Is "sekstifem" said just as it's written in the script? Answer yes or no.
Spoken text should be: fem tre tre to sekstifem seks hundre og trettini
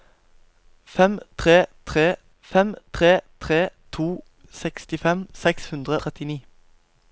yes